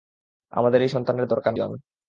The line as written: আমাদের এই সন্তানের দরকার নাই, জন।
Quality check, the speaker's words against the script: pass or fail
fail